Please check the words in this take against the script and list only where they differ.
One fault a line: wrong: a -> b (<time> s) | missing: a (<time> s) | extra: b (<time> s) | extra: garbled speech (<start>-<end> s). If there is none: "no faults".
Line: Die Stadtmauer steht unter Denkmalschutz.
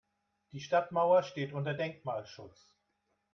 no faults